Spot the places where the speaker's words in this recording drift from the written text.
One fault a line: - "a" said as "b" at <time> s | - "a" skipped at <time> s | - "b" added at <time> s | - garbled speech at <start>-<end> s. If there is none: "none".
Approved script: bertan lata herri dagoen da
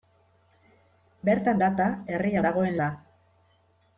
none